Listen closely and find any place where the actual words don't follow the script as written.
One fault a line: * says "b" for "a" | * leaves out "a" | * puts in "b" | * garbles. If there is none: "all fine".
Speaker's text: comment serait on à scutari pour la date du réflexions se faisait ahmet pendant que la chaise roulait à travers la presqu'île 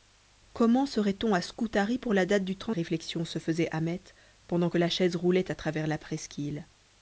all fine